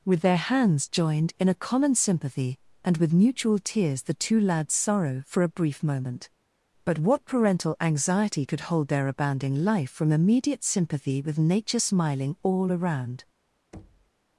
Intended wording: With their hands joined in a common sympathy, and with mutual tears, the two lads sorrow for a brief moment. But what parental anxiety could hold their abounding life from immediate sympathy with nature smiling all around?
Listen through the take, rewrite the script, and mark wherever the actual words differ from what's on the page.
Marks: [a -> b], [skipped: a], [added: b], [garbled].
With their hands joined in a common sympathy, and with mutual tears, the two lads sorrow for a brief moment. But what parental anxiety could hold their abounding life from immediate sympathy with nature smiling all around?